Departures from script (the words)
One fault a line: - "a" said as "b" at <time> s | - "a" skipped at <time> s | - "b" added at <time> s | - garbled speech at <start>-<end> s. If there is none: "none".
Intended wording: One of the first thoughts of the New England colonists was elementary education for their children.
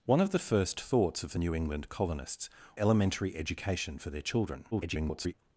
- "was" skipped at 2.5 s
- garbled speech at 4.7-5.3 s